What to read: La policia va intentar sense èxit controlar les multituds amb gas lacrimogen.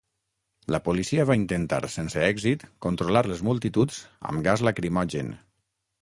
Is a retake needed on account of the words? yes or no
no